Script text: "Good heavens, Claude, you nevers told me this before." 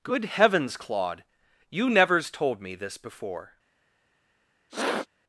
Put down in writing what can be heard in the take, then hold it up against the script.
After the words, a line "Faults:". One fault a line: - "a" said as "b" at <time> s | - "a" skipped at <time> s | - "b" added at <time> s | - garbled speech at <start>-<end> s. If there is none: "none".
"Good heavens, Claude, you nevers told me this before."
Faults:
none